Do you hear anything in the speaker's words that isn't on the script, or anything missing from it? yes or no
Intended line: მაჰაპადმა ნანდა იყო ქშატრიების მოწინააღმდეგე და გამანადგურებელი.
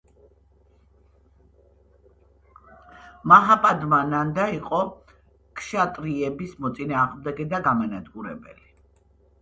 no